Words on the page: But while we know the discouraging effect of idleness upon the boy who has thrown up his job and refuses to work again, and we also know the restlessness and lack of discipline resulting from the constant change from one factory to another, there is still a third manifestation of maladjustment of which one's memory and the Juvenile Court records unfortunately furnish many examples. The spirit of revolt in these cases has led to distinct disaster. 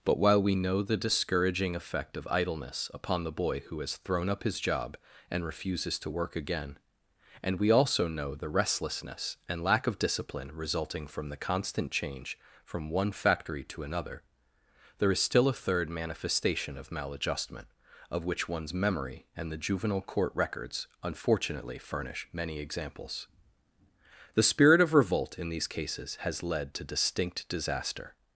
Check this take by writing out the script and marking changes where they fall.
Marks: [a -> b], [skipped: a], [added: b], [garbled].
But while we know the discouraging effect of idleness upon the boy who has thrown up his job and refuses to work again, and we also know the restlessness and lack of discipline resulting from the constant change from one factory to another, there is still a third manifestation of maladjustment of which one's memory and the Juvenile Court records unfortunately furnish many examples. The spirit of revolt in these cases has led to distinct disaster.